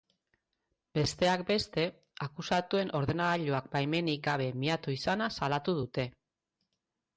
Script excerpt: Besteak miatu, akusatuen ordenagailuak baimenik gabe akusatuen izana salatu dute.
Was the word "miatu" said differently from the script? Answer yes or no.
yes